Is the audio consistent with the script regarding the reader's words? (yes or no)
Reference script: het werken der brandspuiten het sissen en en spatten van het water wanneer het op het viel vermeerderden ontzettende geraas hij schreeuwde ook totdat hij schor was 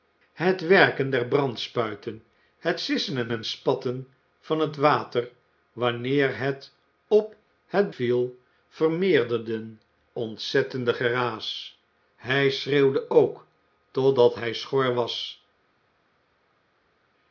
yes